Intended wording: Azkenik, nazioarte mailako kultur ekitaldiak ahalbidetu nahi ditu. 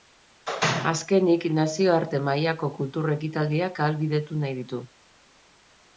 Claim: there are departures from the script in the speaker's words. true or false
false